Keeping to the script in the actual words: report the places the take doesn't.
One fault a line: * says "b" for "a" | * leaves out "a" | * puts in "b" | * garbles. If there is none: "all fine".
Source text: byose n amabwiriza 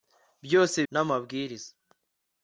all fine